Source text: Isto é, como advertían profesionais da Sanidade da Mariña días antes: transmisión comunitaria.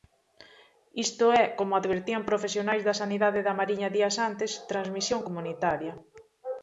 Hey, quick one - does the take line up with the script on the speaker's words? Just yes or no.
yes